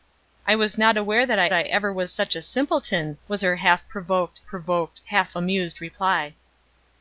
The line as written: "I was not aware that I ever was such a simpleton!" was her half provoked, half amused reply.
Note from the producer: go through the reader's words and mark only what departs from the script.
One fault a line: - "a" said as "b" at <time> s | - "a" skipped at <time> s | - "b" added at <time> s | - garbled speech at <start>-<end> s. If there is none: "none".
- "I" added at 1.5 s
- "provoked" added at 4.5 s